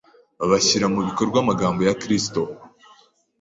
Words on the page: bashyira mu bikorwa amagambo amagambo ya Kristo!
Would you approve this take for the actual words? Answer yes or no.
no